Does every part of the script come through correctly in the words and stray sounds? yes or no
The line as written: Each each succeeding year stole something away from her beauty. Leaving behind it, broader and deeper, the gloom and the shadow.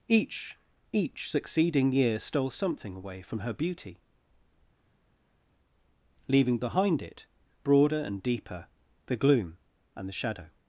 yes